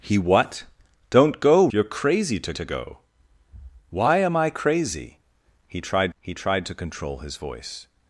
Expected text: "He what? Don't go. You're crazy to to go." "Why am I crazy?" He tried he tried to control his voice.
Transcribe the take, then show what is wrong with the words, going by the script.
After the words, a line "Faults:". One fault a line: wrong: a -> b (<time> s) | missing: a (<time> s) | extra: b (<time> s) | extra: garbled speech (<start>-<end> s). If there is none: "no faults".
"He what? Don't go. You're crazy to to go." "Why am I crazy?" He tried he tried to control his voice.
Faults:
no faults